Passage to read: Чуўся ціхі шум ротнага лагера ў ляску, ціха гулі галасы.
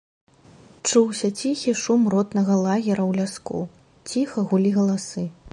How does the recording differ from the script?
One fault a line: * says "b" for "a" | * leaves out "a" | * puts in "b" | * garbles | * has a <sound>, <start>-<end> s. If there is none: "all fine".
all fine